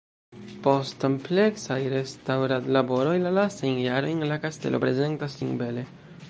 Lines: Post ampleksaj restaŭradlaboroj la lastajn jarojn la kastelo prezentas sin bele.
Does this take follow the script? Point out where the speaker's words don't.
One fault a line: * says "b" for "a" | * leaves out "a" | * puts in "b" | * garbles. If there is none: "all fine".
all fine